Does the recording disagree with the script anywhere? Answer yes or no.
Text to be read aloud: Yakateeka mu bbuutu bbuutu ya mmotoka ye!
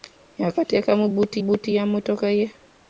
no